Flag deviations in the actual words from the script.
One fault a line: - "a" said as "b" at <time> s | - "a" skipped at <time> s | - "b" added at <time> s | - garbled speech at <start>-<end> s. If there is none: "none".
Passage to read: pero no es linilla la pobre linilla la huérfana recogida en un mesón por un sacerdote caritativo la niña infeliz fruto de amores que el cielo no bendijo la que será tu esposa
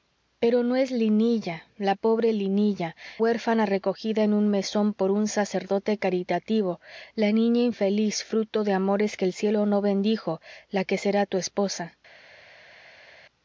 - "la" skipped at 3.0 s